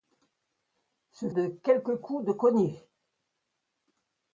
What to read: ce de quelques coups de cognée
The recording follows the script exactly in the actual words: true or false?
true